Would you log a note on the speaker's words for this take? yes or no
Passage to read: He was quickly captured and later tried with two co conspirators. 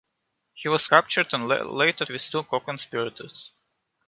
yes